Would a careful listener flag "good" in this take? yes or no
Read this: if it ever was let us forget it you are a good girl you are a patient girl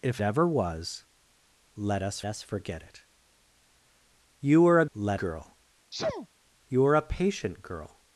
yes